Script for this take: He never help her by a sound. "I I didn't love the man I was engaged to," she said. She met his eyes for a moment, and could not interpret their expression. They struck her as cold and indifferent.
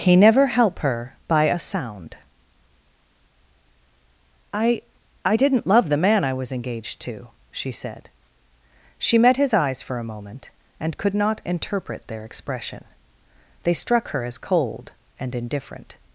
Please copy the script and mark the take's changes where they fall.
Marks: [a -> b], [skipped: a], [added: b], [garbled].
He never help her by a sound. "I I didn't love the man I was engaged to," she said. She met his eyes for a moment, and could not interpret their expression. They struck her as cold and indifferent.